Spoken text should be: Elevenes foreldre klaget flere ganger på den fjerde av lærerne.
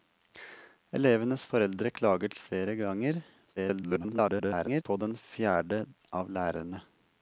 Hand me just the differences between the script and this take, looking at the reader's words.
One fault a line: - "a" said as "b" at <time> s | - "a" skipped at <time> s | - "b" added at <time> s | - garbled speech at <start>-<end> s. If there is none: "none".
- garbled speech at 3.6-4.8 s